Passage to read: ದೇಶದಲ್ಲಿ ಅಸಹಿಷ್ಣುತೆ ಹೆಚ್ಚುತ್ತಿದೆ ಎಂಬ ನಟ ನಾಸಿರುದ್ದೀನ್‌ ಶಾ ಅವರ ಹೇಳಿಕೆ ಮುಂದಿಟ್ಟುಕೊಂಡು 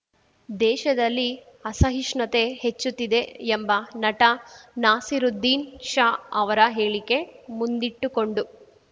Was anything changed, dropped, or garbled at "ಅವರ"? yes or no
no